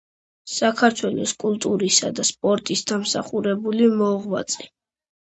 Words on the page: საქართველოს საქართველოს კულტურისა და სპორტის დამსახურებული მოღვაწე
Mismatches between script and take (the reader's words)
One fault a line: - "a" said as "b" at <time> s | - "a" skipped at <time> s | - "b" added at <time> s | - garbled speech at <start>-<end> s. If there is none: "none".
- "საქართველოს" skipped at 1.3 s